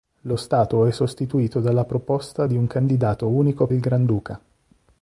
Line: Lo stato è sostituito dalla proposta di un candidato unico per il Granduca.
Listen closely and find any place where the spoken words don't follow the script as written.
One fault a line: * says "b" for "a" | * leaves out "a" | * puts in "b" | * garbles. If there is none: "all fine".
* leaves out "per"